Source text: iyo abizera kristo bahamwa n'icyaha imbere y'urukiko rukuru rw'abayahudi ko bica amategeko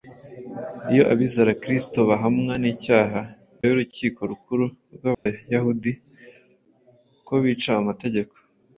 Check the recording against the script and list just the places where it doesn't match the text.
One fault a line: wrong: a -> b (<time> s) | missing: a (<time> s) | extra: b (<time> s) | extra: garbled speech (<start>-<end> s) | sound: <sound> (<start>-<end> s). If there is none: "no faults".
missing: imbere (3.2 s)
sound: dropout (5.1-5.3 s)